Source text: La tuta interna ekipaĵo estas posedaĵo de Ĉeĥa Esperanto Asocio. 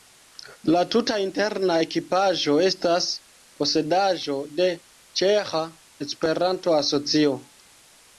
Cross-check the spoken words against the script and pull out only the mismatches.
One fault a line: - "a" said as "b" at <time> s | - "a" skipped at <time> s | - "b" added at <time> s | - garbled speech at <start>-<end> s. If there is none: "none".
none